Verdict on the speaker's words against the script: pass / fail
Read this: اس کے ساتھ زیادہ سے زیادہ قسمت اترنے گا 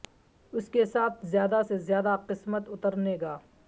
pass